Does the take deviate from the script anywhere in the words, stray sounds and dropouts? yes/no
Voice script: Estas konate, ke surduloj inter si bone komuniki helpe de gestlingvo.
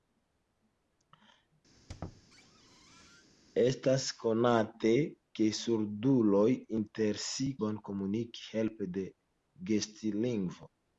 yes